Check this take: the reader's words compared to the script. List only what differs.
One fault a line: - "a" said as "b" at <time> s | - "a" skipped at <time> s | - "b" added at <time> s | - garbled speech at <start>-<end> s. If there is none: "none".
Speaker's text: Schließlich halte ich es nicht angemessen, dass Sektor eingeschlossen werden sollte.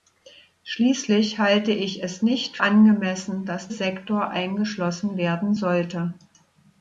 none